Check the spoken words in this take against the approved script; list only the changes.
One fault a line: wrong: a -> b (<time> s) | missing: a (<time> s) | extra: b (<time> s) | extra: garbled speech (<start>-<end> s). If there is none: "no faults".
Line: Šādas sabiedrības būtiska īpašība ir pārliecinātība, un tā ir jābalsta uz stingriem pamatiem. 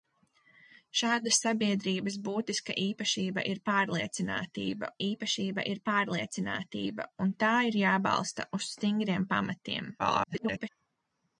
extra: īpašība ir pārliecinātība (5.1 s)
extra: garbled speech (10.0-10.7 s)